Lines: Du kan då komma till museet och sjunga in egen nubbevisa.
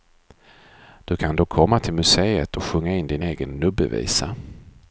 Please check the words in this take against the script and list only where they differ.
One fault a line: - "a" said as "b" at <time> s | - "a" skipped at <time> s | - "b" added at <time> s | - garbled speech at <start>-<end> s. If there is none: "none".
- "din" added at 3.1 s